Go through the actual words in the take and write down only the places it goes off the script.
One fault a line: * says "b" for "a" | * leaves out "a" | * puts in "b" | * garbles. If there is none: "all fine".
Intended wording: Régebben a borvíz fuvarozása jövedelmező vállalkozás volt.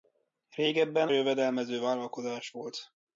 * leaves out "a borvíz fuvarozása"